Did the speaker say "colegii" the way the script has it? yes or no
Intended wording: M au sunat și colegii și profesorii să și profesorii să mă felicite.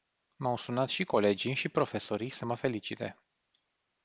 yes